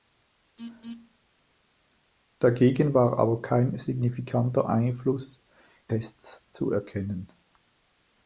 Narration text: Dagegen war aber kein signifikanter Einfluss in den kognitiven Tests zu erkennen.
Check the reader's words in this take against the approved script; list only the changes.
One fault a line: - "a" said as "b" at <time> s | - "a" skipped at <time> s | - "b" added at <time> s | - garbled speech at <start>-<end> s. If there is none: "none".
- "in den kognitiven" skipped at 5.4 s